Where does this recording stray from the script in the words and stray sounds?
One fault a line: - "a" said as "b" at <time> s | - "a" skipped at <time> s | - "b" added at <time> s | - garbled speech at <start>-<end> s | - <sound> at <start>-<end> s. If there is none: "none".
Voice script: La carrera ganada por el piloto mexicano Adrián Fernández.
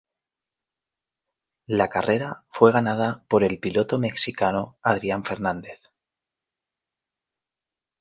- "fue" added at 2.5 s